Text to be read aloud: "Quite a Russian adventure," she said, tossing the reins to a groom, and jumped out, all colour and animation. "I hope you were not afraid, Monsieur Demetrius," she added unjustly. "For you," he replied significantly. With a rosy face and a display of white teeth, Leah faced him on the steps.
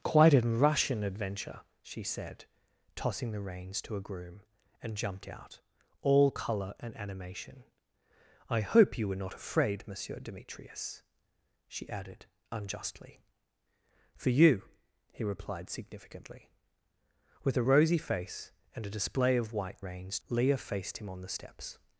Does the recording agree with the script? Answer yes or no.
no